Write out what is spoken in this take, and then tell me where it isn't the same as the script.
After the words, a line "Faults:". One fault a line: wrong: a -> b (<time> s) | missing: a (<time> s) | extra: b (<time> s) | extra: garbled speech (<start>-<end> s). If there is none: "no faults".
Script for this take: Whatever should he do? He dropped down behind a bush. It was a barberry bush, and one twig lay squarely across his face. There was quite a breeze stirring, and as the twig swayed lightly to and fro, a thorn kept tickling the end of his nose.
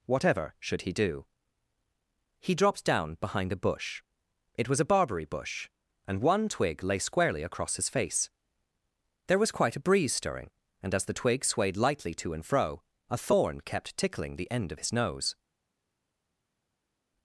Whatever should he do? He dropped down behind a bush. It was a barberry bush, and one twig lay squarely across his face. There was quite a breeze stirring, and as the twig swayed lightly to and fro, a thorn kept tickling the end of his nose.
Faults:
no faults